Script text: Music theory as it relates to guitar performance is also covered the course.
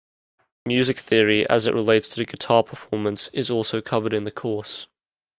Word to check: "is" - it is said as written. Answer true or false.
true